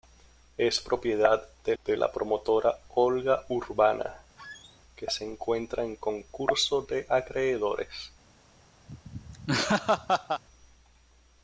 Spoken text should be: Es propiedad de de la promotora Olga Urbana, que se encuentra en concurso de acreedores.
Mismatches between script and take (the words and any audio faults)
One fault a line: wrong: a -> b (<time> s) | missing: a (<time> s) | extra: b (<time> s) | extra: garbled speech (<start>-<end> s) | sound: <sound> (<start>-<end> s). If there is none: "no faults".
sound: squeak (4.4-4.8 s)
sound: laugh (8.9-10.4 s)